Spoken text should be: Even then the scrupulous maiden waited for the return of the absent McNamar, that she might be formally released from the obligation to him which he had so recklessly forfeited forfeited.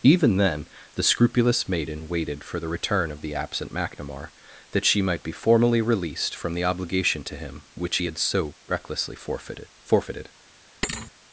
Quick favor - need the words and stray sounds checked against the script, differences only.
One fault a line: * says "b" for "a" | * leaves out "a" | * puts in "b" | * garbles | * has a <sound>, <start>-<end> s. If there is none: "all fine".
* has a thud, 10.8-11.1 s